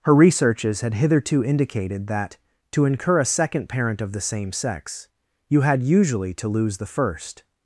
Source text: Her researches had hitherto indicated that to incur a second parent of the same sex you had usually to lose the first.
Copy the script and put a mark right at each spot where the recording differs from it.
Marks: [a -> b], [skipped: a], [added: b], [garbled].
Her researches had hitherto indicated that to incur a second parent of the same sex you had usually to lose the first.